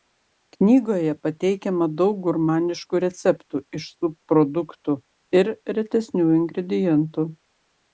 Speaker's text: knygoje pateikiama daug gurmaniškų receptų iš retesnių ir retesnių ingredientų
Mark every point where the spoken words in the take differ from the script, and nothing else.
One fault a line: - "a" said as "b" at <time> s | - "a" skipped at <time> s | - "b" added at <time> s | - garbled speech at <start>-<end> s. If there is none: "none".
- "retesnių" said as "subproduktų" at 4.0 s